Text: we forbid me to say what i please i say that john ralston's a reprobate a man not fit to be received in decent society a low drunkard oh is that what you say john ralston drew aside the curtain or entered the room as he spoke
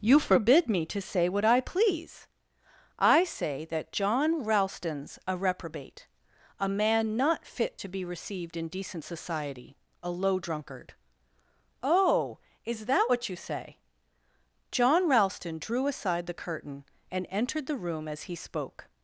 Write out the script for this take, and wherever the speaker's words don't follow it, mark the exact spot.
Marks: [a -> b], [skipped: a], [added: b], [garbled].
[we -> you] forbid me to say what i please i say that john ralston's a reprobate a man not fit to be received in decent society a low drunkard oh is that what you say john ralston drew aside the curtain [or -> and] entered the room as he spoke